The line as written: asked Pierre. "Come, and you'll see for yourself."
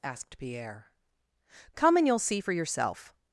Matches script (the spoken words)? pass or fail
pass